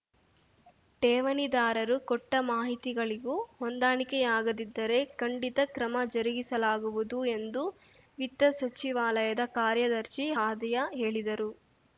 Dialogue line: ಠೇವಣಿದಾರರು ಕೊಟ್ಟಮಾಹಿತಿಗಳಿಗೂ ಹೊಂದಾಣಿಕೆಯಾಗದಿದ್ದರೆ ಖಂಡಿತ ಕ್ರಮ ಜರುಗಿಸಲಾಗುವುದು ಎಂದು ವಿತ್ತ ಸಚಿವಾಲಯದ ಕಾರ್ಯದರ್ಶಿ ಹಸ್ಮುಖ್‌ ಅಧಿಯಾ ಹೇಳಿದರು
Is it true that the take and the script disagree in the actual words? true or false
true